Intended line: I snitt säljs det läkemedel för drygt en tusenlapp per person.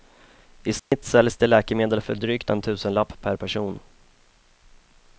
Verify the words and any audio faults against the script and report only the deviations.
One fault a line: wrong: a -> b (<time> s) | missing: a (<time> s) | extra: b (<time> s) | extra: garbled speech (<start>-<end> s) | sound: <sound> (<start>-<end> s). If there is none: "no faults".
sound: dropout (0.8-0.9 s)